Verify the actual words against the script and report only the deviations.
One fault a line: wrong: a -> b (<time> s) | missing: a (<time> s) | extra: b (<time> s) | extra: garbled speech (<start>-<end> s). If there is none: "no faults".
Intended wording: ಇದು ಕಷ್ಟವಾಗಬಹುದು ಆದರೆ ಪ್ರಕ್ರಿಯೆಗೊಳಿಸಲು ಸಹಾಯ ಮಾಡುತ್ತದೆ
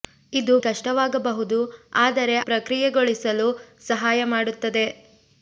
no faults